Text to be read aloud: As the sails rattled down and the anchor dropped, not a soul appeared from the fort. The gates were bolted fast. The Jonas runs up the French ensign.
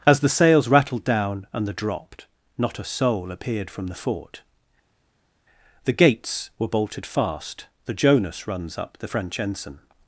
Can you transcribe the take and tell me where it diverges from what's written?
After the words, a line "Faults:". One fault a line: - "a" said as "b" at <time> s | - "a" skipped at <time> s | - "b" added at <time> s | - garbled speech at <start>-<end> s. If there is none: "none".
As the sails rattled down and the dropped, not a soul appeared from the fort. The gates were bolted fast. The Jonas runs up the French ensign.
Faults:
- "anchor" skipped at 1.7 s